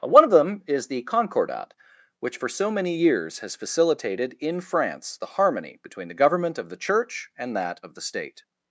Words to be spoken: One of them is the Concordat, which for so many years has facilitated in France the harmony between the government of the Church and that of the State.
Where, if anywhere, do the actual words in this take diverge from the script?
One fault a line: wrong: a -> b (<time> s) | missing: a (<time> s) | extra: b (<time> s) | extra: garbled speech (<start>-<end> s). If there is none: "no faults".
no faults